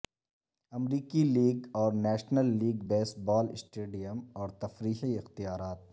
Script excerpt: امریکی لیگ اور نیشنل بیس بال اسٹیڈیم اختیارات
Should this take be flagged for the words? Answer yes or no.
yes